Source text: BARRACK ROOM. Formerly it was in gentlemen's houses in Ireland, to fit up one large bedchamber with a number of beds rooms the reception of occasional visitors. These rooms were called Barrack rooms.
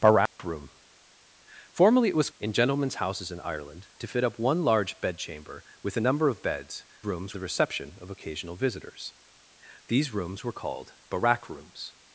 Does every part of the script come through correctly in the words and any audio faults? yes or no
no